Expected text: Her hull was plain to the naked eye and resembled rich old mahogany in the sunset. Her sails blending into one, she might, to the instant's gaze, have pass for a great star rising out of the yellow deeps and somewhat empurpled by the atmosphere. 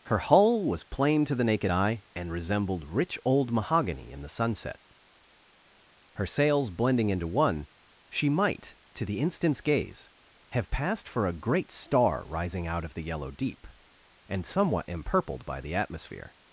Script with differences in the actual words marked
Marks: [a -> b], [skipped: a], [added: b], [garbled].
Her hull was plain to the naked eye and resembled rich old mahogany in the sunset. Her sails blending into one, she might, to the instant's gaze, have [pass -> passed] for a great star rising out of the yellow [deeps -> deep] and somewhat empurpled by the atmosphere.